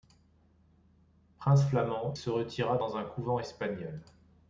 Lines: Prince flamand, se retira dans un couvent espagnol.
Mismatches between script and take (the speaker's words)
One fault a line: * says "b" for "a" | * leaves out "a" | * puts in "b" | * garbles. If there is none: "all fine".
all fine